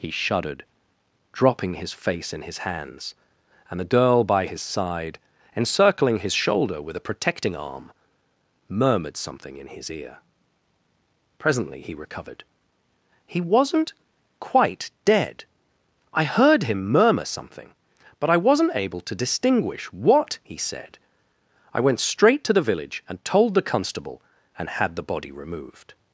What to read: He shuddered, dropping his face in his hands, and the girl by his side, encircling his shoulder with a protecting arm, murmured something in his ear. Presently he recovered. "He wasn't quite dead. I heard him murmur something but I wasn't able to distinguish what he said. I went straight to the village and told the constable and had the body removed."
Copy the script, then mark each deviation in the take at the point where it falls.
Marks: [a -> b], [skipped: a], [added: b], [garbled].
He shuddered, dropping his face in his hands, and the girl by his side, encircling his shoulder with a protecting arm, murmured something in his ear. Presently he recovered. "He wasn't quite dead. I heard him murmur something but I wasn't able to distinguish what he said. I went straight to the village and told the constable and had the body removed."